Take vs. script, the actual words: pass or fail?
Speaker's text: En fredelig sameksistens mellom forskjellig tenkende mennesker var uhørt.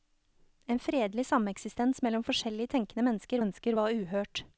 fail